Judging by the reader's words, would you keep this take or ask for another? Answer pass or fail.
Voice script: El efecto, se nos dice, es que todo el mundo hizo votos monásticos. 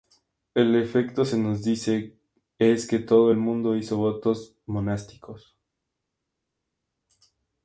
pass